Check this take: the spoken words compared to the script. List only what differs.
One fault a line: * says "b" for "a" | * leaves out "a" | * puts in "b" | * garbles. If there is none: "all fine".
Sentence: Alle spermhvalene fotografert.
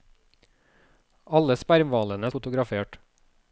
all fine